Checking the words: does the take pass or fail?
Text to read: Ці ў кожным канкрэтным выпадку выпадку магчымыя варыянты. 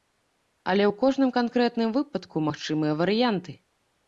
fail